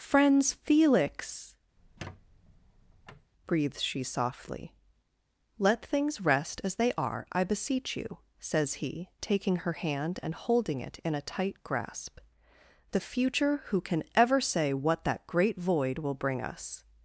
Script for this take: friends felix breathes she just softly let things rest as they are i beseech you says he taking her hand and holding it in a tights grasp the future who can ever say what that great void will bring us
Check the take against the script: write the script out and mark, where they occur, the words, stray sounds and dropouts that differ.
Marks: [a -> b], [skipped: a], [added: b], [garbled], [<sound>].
friends felix [squeak] breathes she [skipped: just] softly let things rest as they are i beseech you says he taking her hand and holding it in a [tights -> tight] grasp the future who can ever say what that great void will bring us